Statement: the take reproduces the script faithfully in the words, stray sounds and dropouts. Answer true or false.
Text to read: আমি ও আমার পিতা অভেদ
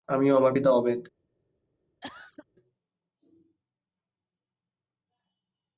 false